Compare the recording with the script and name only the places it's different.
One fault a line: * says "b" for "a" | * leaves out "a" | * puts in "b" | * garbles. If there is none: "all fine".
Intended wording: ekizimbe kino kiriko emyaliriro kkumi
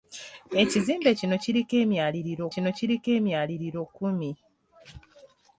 * puts in "kino kiriko emyaliriro"